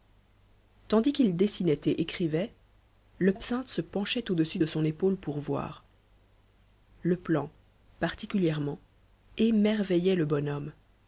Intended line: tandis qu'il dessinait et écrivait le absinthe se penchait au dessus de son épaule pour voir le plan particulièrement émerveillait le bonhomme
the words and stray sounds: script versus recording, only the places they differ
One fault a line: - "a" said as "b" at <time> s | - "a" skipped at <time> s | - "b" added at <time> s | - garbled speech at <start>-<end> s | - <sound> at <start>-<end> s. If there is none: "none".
none